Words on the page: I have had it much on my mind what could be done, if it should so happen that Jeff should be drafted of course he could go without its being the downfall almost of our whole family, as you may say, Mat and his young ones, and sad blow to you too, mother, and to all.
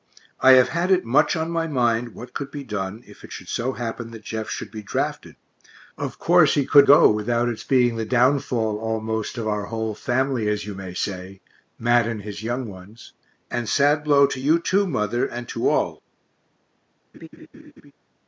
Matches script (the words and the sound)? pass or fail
fail